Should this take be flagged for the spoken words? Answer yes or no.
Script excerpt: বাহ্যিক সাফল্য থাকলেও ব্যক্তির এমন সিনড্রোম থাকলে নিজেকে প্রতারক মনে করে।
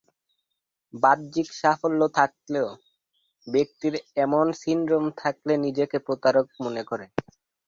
no